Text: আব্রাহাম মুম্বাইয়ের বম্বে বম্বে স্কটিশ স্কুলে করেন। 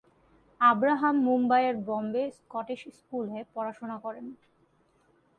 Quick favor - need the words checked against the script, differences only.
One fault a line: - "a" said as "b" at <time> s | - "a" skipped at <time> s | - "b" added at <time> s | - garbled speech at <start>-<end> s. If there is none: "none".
- "বম্বে" skipped at 2.2 s
- "পড়াশোনা" added at 3.5 s